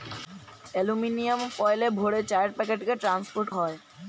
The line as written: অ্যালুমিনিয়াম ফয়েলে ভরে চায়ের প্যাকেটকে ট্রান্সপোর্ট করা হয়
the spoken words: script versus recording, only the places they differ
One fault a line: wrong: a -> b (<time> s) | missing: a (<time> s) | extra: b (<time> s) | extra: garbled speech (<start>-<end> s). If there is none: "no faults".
missing: করা (3.5 s)